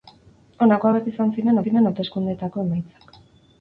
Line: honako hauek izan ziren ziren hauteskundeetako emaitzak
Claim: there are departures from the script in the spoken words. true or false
false